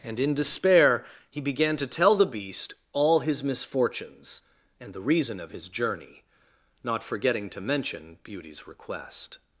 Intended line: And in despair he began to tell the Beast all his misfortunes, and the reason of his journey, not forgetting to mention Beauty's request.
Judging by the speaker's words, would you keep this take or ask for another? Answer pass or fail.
pass